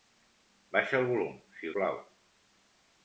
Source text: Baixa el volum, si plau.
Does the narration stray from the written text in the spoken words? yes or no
no